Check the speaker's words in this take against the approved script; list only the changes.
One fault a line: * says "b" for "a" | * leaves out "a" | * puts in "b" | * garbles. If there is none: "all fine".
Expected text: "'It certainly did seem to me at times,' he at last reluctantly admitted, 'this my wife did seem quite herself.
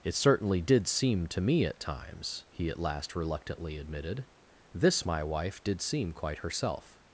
all fine